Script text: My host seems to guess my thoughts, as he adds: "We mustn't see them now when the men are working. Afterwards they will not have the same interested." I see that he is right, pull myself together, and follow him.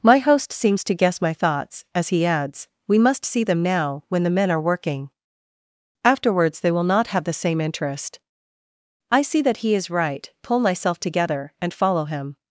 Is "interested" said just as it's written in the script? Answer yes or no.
no